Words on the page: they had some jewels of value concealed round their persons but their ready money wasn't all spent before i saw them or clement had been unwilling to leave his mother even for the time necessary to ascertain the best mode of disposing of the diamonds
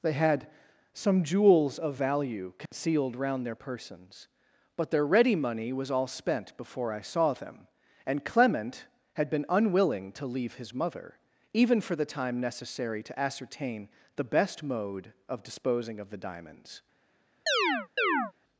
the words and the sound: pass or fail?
fail